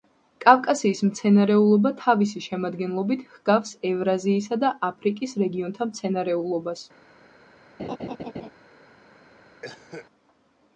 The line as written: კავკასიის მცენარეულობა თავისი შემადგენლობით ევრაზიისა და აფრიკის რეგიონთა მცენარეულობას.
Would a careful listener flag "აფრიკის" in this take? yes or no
no